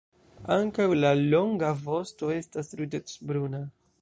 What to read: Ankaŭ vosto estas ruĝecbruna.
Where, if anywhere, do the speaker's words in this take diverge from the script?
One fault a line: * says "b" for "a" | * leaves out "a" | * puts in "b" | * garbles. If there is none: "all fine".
* puts in "la longa"